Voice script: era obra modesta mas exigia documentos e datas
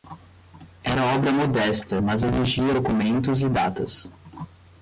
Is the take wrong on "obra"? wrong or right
right